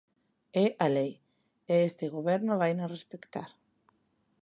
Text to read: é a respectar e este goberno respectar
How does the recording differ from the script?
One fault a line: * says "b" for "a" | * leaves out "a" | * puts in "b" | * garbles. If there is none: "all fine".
* says "lei" for "respectar"
* puts in "vaina"